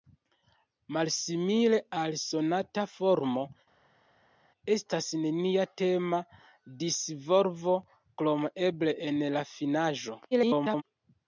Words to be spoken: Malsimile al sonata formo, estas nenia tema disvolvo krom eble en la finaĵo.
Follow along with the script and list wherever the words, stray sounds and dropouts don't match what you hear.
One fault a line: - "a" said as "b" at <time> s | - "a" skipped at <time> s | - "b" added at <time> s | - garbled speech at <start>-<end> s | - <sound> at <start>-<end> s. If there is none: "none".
- garbled speech at 10.3-10.8 s